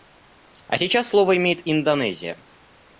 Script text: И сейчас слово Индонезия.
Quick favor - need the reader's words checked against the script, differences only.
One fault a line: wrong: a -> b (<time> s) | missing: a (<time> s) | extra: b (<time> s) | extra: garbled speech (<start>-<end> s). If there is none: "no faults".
wrong: И -> А (0.7 s)
extra: имеет (1.3 s)